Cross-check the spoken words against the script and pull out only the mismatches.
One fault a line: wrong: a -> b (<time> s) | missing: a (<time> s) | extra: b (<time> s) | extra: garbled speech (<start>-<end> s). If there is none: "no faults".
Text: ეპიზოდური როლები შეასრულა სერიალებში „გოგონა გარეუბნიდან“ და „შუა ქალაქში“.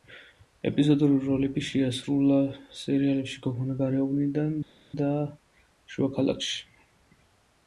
no faults